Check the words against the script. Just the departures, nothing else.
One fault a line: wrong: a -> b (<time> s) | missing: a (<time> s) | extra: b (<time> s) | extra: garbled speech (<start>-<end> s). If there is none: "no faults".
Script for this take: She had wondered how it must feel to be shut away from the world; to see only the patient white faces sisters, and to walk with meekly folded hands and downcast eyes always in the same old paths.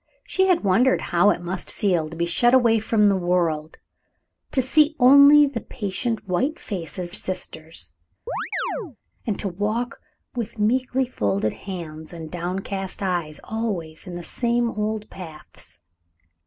no faults